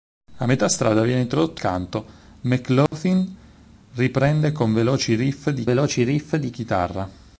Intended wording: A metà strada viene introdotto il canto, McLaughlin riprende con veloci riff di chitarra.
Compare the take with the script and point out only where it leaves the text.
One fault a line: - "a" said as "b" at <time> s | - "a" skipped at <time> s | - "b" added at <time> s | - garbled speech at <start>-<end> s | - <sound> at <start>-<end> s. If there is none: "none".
- "il" skipped at 1.6 s
- dropout at 2.9-2.9 s
- "veloci riff di" added at 5.6 s